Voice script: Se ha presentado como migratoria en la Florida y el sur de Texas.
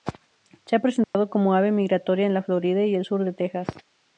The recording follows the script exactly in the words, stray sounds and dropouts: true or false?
false